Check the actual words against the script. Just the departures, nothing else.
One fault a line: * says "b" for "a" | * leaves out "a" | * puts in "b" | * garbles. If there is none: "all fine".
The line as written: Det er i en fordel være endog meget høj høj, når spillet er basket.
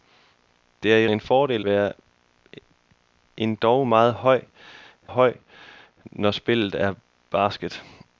all fine